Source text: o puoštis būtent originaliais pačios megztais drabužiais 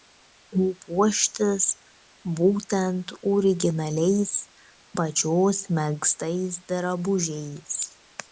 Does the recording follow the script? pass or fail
pass